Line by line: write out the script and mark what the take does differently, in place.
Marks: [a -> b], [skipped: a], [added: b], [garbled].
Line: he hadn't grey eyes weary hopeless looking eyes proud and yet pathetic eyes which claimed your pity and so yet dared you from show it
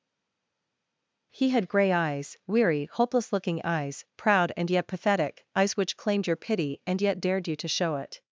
he [hadn't -> had] grey eyes weary hopeless looking eyes proud and yet pathetic eyes which claimed your pity and [skipped: so] yet dared you [from -> to] show it